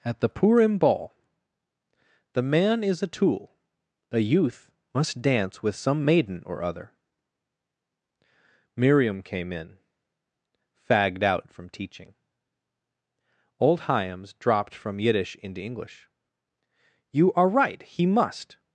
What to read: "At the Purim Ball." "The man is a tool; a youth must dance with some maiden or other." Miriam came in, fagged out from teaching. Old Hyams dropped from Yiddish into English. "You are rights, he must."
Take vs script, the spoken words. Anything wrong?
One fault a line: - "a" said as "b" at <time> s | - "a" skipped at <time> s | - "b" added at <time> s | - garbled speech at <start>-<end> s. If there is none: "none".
- "rights" said as "right" at 17.5 s